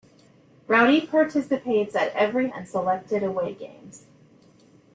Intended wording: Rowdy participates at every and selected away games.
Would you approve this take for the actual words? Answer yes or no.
yes